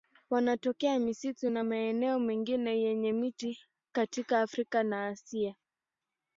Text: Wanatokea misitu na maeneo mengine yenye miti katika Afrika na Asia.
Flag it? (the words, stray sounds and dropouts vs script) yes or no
no